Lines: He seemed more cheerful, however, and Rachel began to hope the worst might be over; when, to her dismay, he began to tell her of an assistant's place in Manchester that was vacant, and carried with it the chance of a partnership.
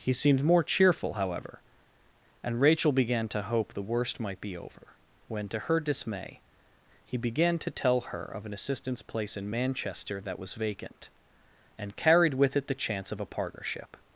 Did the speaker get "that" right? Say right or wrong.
right